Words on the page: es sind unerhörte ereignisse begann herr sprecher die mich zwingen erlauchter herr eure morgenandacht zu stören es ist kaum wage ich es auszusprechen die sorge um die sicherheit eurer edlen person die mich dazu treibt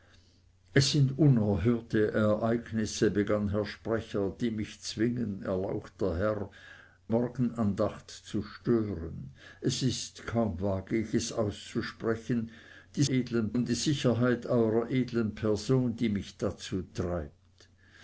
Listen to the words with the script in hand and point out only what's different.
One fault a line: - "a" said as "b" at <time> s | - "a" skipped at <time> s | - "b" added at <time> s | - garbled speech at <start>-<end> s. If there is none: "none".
- "eure" skipped at 6.5 s
- "sorge" said as "edlen" at 13.1 s